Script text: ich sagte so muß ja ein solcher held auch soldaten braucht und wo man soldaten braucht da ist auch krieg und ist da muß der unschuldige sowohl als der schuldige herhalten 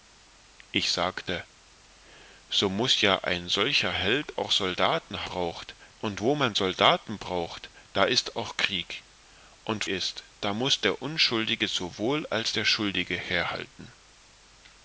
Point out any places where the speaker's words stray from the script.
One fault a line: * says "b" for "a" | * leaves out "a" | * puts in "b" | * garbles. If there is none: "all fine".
all fine